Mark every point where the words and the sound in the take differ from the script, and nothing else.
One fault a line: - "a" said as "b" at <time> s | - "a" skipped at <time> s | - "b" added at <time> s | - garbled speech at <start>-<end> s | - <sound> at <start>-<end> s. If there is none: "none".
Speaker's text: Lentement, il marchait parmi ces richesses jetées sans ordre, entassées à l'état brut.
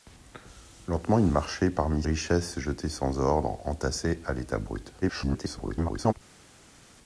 - "ces" skipped at 2.0 s
- garbled speech at 5.0-6.1 s